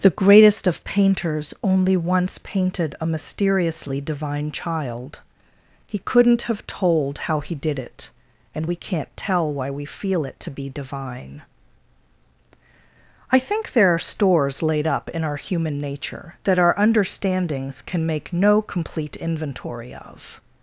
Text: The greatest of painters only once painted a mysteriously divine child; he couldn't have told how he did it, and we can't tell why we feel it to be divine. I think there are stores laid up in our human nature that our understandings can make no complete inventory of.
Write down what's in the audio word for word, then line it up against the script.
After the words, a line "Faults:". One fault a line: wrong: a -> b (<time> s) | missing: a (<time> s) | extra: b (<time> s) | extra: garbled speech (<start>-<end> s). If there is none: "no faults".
The greatest of painters only once painted a mysteriously divine child; he couldn't have told how he did it, and we can't tell why we feel it to be divine. I think there are stores laid up in our human nature that our understandings can make no complete inventory of.
Faults:
no faults